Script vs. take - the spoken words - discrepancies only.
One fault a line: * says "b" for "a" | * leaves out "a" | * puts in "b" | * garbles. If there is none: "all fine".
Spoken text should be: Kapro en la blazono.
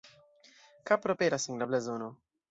* puts in "aperas"